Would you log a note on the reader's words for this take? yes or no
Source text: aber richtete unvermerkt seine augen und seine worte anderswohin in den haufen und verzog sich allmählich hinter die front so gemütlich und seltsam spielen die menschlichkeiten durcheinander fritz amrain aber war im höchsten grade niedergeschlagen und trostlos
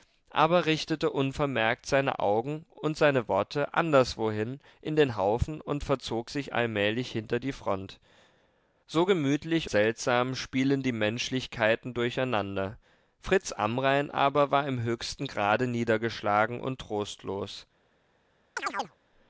yes